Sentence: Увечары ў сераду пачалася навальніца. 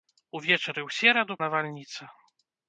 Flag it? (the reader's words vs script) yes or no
yes